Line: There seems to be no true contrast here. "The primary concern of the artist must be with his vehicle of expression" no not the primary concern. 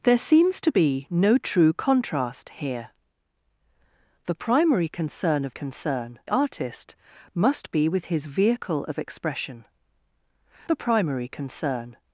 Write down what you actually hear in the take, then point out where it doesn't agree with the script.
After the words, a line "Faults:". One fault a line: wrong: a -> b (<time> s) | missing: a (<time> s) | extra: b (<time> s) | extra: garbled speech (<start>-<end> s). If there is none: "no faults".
There seems to be no true contrast here. "The primary concern of concern artist must be with his vehicle of expression" the primary concern.
Faults:
wrong: the -> concern (5.5 s)
missing: no not (9.6 s)